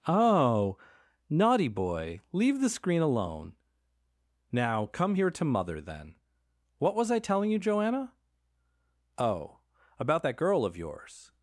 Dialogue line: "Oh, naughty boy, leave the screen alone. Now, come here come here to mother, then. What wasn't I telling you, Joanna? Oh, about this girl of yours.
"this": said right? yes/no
no